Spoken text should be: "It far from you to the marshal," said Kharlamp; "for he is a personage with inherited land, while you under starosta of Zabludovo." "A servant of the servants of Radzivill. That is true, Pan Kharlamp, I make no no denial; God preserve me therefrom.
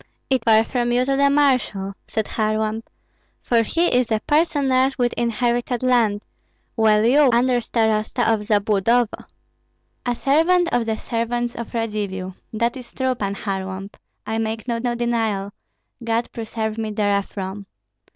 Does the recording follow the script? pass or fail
pass